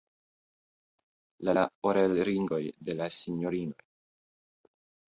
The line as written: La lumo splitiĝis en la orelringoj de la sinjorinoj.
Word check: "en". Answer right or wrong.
wrong